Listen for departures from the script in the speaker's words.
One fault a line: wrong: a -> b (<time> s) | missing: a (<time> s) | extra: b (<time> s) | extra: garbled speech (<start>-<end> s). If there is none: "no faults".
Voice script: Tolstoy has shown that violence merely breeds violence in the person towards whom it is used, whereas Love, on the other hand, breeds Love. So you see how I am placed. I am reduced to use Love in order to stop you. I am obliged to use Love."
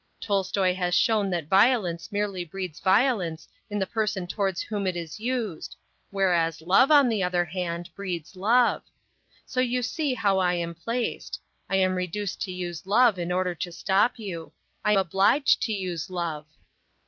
missing: am (14.9 s)